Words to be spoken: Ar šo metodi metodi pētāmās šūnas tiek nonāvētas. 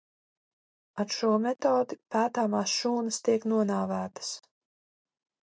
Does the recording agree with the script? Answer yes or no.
no